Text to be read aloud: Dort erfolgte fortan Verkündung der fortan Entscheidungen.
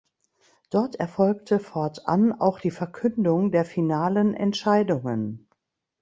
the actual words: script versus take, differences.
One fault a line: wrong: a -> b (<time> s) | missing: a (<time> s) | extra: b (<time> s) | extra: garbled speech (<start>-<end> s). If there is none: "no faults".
extra: auch die (2.3 s)
wrong: fortan -> finalen (3.7 s)